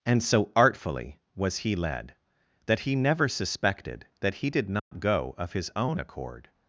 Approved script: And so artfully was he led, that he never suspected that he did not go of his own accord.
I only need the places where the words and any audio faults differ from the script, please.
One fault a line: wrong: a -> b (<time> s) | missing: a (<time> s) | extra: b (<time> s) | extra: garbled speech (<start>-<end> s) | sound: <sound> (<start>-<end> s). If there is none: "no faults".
sound: dropout (4.8-4.9 s)